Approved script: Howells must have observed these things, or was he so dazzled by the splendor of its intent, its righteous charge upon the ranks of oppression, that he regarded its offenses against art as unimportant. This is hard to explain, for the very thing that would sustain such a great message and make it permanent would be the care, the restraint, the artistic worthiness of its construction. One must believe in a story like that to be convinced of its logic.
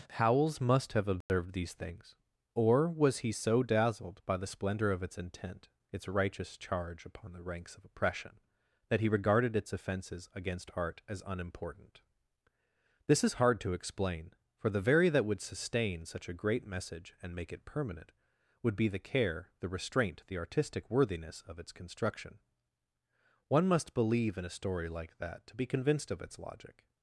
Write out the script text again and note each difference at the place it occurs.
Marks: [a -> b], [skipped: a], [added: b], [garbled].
Howells must have observed these things, or was he so dazzled by the splendor of its intent, its righteous charge upon the ranks of oppression, that he regarded its offenses against art as unimportant. This is hard to explain, for the very [skipped: thing] that would sustain such a great message and make it permanent would be the care, the restraint, the artistic worthiness of its construction. One must believe in a story like that to be convinced of its logic.